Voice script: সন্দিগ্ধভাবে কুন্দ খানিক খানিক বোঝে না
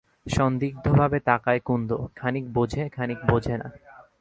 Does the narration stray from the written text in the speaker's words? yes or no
yes